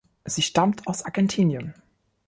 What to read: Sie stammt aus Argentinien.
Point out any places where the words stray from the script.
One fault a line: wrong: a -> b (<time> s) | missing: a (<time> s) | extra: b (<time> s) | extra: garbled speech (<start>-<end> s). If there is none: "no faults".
no faults